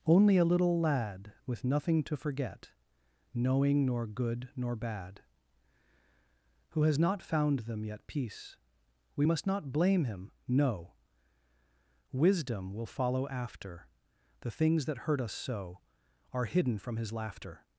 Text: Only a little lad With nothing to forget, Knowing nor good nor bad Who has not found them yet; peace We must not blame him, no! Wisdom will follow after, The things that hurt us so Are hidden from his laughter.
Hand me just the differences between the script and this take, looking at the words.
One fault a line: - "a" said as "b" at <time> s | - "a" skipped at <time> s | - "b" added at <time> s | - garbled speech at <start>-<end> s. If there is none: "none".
none